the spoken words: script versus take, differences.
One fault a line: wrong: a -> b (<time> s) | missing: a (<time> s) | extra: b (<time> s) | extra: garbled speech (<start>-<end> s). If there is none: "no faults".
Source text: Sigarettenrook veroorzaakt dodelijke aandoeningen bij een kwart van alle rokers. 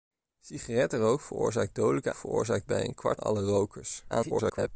wrong: aandoeningen -> veroorzaakt (2.1 s)
missing: van (3.2 s)
extra: garbled speech (4.1-4.7 s)